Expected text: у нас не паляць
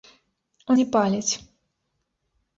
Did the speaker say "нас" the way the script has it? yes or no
no